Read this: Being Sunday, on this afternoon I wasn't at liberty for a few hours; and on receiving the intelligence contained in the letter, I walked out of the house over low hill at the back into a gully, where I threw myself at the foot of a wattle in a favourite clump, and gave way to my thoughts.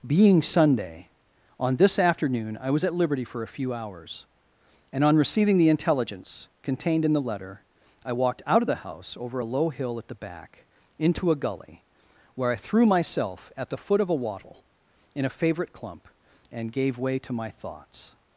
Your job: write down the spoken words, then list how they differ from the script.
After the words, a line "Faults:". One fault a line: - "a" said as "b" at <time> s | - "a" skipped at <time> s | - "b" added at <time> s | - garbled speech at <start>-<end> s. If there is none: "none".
Being Sunday, on this afternoon I was at liberty for a few hours; and on receiving the intelligence contained in the letter, I walked out of the house over a low hill at the back into a gully, where I threw myself at the foot of a wattle in a favourite clump, and gave way to my thoughts.
Faults:
- "wasn't" said as "was" at 2.7 s
- "a" added at 9.4 s